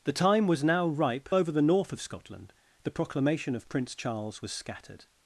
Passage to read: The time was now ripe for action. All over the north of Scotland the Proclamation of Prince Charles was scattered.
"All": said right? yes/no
no